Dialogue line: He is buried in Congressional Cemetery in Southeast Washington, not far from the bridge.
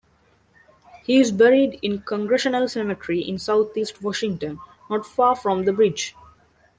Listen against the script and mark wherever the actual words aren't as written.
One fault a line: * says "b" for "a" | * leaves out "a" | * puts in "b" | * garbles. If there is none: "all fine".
all fine